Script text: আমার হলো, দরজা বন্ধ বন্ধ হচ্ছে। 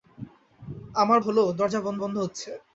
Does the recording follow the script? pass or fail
pass